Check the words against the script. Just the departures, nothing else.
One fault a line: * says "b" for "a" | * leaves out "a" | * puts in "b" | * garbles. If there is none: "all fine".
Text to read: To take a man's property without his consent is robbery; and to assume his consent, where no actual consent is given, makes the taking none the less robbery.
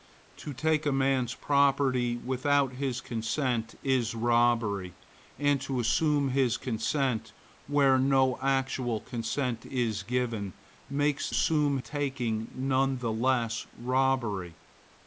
* says "assume" for "the"